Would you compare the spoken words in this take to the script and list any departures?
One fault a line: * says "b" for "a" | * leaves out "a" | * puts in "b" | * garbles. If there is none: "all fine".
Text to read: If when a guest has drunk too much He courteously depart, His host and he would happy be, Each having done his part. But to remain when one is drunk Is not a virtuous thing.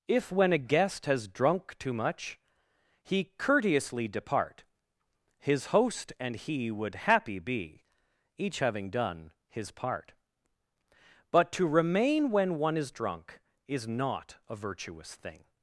all fine